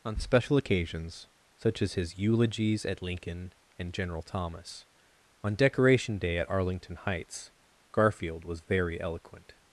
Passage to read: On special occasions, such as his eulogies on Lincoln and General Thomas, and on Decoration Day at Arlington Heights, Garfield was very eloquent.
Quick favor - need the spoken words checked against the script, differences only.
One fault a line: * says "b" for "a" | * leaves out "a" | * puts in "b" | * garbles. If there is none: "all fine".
* says "at" for "on"
* leaves out "and"